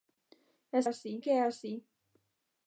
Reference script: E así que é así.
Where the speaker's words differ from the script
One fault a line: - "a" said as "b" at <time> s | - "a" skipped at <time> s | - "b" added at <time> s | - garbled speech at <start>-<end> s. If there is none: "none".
none